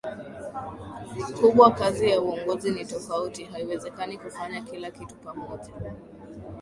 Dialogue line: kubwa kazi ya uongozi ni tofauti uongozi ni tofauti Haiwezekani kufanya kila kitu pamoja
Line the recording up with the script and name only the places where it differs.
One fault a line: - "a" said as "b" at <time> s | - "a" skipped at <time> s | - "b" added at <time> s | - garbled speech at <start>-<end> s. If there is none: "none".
- "uongozi ni tofauti" skipped at 3.4 s